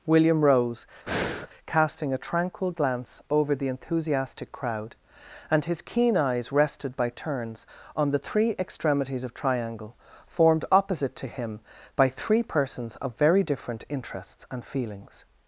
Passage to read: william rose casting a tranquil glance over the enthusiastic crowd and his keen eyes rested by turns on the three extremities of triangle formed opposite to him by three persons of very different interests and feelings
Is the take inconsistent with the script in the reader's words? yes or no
no